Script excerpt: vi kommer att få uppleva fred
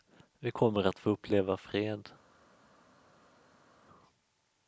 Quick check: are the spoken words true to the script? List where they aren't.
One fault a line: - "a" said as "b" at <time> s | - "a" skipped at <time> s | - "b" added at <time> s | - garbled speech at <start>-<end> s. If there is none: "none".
none